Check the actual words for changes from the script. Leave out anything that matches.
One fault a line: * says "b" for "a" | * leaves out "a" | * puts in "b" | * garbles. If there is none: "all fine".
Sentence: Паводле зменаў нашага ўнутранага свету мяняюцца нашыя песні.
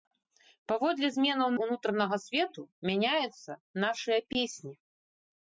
* leaves out "нашага"